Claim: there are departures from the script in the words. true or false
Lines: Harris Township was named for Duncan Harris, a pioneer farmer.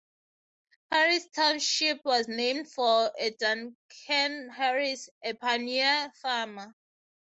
false